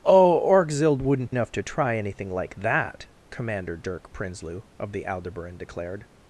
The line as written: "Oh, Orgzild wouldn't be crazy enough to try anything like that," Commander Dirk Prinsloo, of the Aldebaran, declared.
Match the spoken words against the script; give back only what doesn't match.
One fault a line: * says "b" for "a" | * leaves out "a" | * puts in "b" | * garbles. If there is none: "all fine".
* leaves out "be crazy"